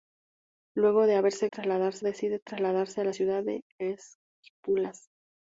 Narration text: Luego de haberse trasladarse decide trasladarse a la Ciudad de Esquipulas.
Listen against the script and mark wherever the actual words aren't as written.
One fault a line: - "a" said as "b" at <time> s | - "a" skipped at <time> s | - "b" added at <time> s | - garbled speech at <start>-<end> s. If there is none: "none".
none